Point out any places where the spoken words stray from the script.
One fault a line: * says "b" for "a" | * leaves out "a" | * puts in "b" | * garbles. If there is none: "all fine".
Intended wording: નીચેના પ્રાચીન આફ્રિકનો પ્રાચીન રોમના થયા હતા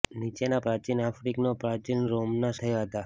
all fine